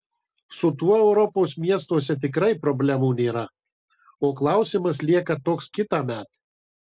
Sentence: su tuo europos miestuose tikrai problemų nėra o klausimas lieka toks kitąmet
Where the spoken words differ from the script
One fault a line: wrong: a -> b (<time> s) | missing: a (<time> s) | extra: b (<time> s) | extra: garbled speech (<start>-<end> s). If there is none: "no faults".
no faults